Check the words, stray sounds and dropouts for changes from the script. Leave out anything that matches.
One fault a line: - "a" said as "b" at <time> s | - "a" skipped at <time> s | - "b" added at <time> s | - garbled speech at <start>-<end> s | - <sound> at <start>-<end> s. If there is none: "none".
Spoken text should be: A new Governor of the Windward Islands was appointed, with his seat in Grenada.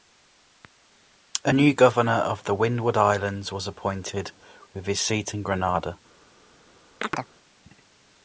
- chirp at 7.0-7.3 s